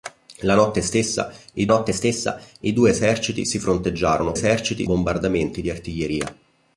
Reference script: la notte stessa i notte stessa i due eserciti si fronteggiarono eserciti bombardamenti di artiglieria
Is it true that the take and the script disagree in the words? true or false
false